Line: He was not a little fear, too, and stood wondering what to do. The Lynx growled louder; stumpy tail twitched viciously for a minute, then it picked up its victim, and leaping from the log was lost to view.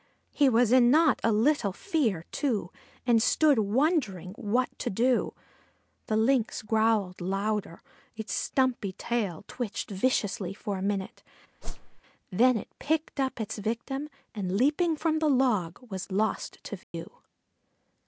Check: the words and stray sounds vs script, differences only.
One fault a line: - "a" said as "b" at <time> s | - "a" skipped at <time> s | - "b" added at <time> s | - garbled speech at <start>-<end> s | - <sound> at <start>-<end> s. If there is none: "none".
- "in" added at 0.7 s
- "its" added at 8.2 s
- whoosh at 11.6-12.0 s
- dropout at 16.8-16.9 s